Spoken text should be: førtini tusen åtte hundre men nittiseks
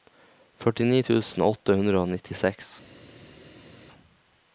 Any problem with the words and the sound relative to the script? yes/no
yes